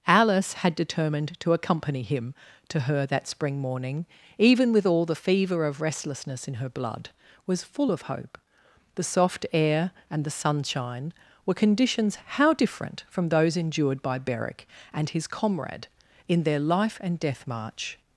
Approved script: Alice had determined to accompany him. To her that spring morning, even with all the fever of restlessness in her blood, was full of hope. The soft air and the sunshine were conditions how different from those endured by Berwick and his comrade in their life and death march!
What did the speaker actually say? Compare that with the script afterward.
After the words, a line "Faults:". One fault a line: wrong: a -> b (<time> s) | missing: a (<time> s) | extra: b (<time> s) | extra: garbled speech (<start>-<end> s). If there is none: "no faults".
Alice had determined to accompany him. To her that spring morning, even with all the fever of restlessness in her blood, was full of hope. The soft air and the sunshine were conditions how different from those endured by Berwick and his comrade in their life and death march!
Faults:
no faults